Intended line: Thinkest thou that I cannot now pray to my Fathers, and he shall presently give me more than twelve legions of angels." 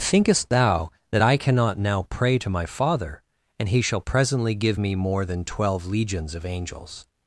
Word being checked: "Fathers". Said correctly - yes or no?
no